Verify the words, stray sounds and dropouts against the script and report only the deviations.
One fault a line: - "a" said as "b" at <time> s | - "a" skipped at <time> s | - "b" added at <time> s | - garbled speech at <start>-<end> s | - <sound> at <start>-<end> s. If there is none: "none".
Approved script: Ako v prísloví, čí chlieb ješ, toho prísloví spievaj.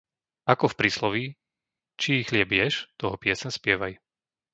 - "prísloví" said as "pieseň" at 3.2 s